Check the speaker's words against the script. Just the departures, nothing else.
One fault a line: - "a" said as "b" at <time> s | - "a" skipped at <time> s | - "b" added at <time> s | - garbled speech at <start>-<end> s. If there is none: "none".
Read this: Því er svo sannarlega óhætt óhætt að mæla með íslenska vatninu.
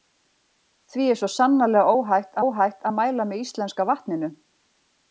none